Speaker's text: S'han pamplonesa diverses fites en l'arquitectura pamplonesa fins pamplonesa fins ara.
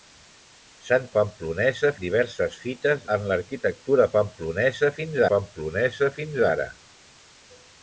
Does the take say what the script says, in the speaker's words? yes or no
yes